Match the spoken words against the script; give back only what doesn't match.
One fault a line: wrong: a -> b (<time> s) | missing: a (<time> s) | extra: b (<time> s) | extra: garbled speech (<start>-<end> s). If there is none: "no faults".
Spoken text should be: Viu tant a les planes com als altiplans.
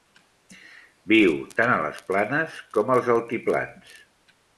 no faults